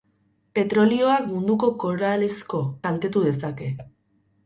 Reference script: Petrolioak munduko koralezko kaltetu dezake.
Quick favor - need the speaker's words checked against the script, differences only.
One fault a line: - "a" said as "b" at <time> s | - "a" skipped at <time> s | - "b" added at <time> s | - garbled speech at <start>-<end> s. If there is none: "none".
none